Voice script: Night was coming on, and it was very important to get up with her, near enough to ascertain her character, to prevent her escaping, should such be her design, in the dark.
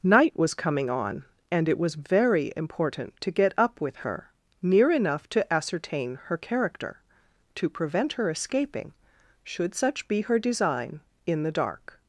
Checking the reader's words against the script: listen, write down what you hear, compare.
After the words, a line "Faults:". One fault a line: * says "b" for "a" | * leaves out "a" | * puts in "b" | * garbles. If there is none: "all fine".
Night was coming on, and it was very important to get up with her, near enough to ascertain her character, to prevent her escaping, should such be her design, in the dark.
Faults:
all fine